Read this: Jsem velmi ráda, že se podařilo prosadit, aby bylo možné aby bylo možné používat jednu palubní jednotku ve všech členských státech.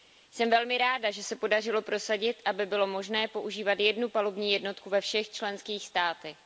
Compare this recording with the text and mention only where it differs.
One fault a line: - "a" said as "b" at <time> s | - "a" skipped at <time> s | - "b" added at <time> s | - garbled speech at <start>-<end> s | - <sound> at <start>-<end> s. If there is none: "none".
- "aby bylo možné" skipped at 3.3 s